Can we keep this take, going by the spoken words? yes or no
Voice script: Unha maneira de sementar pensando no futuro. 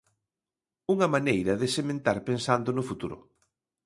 yes